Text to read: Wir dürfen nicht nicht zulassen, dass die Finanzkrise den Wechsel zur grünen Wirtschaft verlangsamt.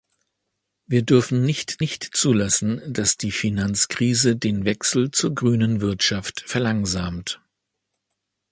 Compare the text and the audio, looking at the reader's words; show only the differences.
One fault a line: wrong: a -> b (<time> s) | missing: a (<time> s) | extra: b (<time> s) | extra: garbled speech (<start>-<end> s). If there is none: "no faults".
no faults